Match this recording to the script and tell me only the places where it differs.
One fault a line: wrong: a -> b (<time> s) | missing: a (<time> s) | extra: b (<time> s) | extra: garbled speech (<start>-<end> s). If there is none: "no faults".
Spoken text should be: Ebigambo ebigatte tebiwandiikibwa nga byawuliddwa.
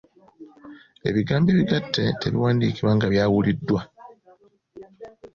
no faults